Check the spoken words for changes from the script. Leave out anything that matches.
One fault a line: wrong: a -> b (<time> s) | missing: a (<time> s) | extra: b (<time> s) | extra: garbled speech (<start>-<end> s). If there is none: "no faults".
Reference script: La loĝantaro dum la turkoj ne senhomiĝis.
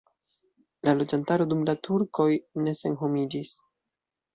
no faults